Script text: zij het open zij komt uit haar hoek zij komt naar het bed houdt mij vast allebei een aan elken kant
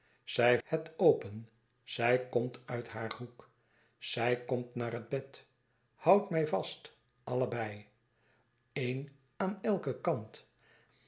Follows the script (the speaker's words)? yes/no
yes